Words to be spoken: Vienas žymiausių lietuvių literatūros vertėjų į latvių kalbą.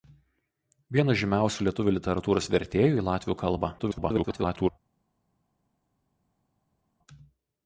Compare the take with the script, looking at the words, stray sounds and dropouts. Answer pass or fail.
fail